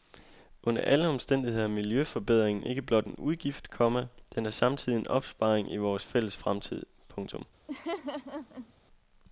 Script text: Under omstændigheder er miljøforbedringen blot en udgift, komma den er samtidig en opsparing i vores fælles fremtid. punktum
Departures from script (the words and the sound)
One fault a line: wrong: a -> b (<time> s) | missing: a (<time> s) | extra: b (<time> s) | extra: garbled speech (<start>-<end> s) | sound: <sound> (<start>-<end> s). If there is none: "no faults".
extra: alle (0.8 s)
extra: ikke (2.6 s)
sound: laugh (7.7-8.7 s)